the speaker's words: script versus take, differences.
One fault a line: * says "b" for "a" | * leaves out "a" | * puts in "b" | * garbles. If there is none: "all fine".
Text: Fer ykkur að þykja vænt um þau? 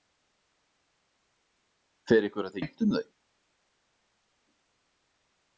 * leaves out "þykja"